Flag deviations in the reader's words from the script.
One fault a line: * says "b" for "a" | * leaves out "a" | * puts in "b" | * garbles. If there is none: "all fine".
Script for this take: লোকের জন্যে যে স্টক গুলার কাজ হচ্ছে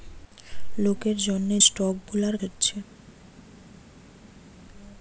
* leaves out "যে"
* leaves out "কাজ"